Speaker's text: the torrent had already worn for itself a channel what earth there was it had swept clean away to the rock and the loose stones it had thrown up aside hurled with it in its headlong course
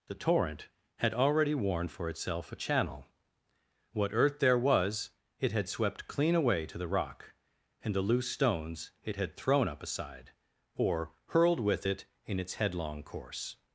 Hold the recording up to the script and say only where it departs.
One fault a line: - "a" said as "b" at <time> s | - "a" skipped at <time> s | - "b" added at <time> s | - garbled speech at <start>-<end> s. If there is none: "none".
- "or" added at 10.8 s